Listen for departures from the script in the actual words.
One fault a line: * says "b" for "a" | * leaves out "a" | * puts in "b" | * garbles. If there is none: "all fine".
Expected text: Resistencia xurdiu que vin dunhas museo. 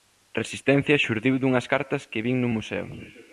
* puts in "dunhas cartas"
* says "nun" for "dunhas"